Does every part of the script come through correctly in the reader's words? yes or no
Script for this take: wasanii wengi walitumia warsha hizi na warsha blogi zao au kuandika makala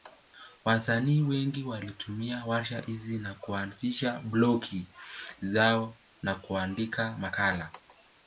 no